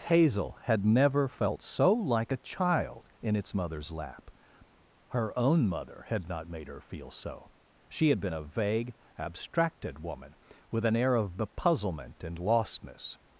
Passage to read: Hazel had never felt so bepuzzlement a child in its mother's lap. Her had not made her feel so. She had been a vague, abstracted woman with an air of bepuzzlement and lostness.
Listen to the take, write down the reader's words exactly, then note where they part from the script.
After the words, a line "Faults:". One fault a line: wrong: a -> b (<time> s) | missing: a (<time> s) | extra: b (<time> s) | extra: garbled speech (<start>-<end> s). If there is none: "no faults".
Hazel had never felt so like a child in its mother's lap. Her own mother had not made her feel so. She had been a vague, abstracted woman with an air of bepuzzlement and lostness.
Faults:
wrong: bepuzzlement -> like (1.9 s)
extra: own mother (5.4 s)